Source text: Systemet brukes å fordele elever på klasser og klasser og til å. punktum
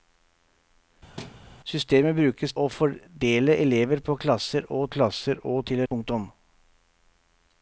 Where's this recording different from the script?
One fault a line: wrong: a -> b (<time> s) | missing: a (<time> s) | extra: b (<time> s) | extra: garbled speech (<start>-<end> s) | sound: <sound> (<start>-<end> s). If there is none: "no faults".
sound: thud (1.2-1.4 s)